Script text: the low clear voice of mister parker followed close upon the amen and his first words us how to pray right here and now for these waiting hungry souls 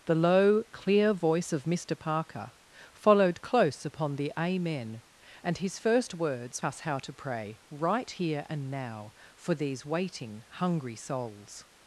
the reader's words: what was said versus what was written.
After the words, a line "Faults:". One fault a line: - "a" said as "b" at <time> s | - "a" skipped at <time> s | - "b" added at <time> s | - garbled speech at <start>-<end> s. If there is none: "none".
the low clear voice of mister parker followed close upon the amen and his first words us how to pray right here and now for these waiting hungry souls
Faults:
none